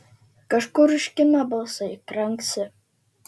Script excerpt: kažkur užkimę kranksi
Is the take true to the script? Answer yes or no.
no